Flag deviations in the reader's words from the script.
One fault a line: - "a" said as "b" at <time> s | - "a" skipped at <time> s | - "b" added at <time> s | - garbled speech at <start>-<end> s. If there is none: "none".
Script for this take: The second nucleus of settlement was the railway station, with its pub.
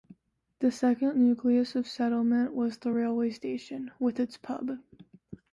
none